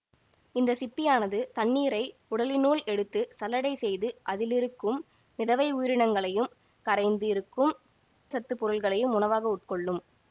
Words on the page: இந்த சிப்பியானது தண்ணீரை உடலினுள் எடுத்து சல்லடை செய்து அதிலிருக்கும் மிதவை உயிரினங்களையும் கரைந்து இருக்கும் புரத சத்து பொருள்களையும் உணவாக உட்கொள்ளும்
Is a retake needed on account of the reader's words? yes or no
yes